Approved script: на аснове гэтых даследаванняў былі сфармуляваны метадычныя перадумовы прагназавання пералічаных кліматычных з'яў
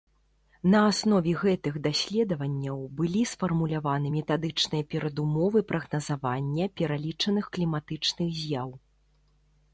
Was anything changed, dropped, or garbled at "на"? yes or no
no